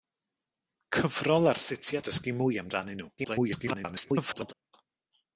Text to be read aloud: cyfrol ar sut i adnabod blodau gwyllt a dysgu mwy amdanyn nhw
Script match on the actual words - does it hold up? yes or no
no